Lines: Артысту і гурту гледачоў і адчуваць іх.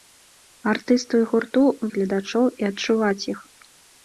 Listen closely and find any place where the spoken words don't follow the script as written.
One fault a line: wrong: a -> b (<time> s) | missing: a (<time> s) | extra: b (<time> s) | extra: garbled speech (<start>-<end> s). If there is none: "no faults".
no faults